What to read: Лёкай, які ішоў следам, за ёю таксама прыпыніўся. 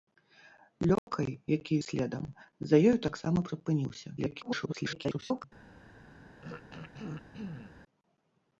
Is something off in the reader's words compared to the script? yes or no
yes